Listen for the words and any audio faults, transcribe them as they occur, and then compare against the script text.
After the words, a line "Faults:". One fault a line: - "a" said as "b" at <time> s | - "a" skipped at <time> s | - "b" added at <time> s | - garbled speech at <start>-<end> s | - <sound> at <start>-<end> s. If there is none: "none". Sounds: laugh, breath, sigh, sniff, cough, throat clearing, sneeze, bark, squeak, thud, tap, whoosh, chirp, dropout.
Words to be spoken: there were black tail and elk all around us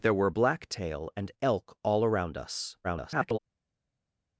there were black tail and elk all around us [garbled]
Faults:
- garbled speech at 2.8-3.4 s